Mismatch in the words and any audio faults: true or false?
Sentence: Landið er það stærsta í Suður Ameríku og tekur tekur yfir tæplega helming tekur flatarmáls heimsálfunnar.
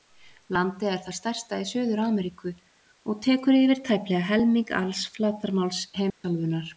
true